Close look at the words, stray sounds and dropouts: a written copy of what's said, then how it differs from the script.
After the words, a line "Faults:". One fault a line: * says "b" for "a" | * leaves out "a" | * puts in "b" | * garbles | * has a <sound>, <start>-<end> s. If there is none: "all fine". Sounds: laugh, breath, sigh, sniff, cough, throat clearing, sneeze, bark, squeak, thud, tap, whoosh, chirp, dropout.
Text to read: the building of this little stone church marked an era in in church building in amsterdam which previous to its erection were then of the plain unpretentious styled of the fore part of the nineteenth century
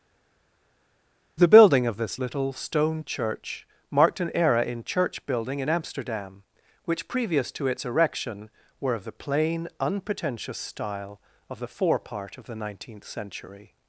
the building of this little stone church marked an era in church building in amsterdam which previous to its erection were of the plain unpretentious style of the fore part of the nineteenth century
Faults:
* leaves out "in"
* leaves out "then"
* says "style" for "styled"